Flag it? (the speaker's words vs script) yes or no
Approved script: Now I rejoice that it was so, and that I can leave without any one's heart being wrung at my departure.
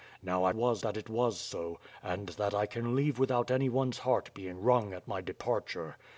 yes